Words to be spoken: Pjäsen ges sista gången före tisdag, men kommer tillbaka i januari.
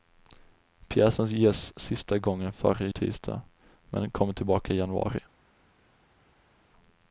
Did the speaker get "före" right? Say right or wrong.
right